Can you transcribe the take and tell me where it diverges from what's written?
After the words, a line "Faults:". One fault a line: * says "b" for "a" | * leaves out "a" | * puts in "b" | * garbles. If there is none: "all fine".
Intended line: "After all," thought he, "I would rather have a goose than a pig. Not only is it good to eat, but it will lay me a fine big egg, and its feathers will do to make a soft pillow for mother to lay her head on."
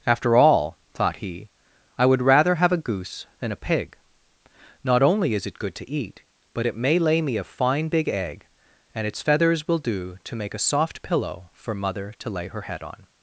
"After all," thought he, "I would rather have a goose than a pig. Not only is it good to eat, but it may lay me a fine big egg, and its feathers will do to make a soft pillow for mother to lay her head on."
Faults:
* says "may" for "will"